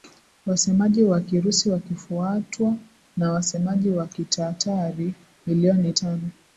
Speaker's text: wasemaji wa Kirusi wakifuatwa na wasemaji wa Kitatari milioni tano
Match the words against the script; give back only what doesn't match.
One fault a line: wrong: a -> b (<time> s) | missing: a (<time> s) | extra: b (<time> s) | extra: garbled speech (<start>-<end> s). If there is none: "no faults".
no faults